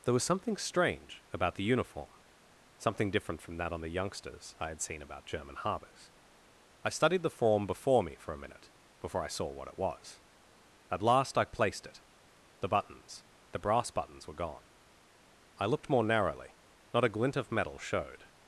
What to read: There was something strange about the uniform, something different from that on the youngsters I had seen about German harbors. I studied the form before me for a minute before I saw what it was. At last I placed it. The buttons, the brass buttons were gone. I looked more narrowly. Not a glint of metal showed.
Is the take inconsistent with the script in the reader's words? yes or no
no